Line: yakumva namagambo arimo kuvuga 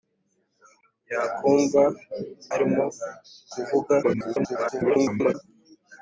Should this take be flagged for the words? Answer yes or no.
yes